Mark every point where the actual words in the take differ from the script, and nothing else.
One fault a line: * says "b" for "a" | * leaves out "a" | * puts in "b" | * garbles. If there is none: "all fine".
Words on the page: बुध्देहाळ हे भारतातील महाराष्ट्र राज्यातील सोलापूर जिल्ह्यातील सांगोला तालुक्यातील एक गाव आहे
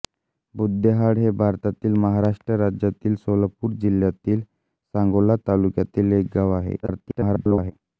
* garbles